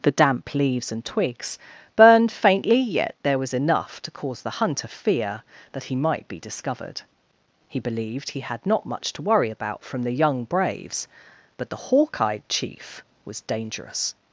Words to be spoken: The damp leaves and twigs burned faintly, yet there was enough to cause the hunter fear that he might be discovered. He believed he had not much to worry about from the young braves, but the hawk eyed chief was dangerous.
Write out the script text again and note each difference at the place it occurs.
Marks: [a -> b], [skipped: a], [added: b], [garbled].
The damp leaves and twigs burned faintly, yet there was enough to cause the hunter fear that he might be discovered. He believed he had not much to worry about from the young braves, but the hawk eyed chief was dangerous.